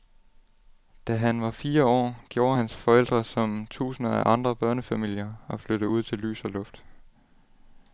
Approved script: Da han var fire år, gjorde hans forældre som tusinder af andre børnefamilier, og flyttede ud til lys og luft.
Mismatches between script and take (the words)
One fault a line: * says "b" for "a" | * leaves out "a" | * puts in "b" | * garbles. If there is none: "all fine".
all fine